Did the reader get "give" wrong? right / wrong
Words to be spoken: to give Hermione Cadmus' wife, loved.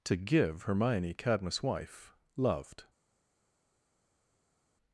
right